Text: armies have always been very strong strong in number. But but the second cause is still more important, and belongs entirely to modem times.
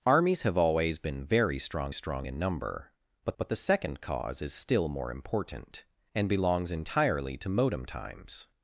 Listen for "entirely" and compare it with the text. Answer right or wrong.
right